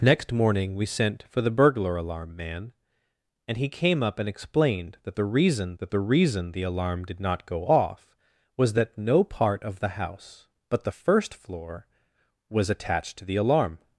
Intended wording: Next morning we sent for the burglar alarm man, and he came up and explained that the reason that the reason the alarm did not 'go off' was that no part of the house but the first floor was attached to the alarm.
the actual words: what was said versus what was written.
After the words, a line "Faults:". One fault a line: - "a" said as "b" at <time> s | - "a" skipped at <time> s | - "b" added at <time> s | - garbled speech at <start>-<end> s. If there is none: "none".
Next morning we sent for the burglar alarm man, and he came up and explained that the reason that the reason the alarm did not 'go off' was that no part of the house but the first floor was attached to the alarm.
Faults:
none